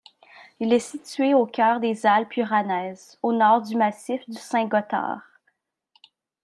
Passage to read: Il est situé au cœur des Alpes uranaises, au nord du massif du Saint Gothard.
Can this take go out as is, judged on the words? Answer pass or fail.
pass